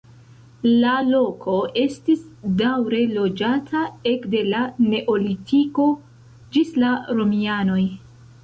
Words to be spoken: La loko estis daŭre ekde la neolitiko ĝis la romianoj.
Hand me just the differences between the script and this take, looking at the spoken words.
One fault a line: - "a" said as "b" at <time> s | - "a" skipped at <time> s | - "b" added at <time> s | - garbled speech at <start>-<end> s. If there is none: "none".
- "loĝata" added at 3.2 s